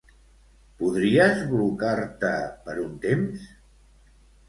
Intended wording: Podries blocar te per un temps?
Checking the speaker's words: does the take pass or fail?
pass